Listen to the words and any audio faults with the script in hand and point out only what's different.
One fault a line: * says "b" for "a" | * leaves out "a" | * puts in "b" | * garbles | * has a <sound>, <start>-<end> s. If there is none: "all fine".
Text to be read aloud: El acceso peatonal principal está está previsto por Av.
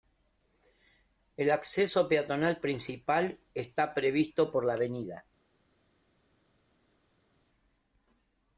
* leaves out "está"
* puts in "la"